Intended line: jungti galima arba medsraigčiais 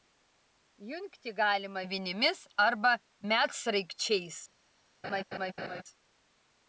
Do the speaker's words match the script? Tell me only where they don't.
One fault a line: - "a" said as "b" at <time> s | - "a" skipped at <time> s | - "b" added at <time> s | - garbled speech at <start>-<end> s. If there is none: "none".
- "vinimis" added at 1.9 s